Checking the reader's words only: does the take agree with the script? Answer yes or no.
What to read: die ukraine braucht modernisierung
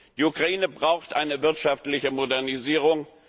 no